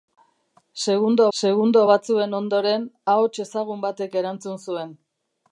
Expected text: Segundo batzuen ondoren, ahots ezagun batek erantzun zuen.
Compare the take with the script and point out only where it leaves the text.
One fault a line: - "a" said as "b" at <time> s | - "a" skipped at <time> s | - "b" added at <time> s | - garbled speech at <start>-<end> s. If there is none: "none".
- "segundo" added at 1.4 s